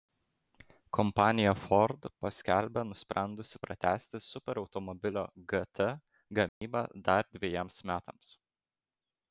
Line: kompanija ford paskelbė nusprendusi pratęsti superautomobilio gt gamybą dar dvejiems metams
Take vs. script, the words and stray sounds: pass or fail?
fail